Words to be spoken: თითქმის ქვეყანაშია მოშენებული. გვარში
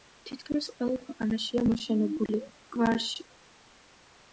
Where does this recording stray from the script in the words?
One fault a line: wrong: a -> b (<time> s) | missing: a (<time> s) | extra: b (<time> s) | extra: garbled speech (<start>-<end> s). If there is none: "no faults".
extra: ყველა (0.8 s)